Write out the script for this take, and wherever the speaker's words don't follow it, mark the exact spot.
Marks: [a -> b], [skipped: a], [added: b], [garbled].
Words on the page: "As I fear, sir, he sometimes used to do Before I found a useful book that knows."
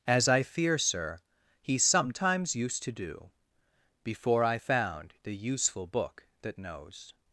"As I fear, sir, he sometimes used to do Before I found [a -> the] useful book that knows."